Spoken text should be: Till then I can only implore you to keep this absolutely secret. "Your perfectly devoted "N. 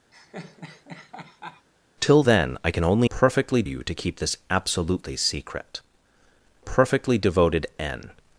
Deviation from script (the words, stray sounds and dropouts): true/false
true